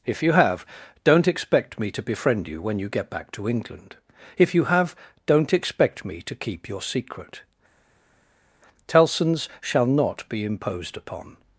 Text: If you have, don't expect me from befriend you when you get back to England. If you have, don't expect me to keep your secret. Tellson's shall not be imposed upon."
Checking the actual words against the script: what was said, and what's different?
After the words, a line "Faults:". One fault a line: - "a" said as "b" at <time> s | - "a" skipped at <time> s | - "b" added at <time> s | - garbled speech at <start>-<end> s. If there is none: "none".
If you have, don't expect me to befriend you when you get back to England. If you have, don't expect me to keep your secret. Tellson's shall not be imposed upon."
Faults:
- "from" said as "to" at 1.9 s